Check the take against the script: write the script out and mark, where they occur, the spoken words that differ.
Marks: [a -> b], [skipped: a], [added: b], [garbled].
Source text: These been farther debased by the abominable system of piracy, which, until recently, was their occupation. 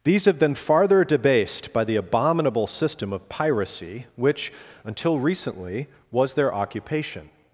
These [added: have] been farther debased by the abominable system of piracy, which, until recently, was their occupation.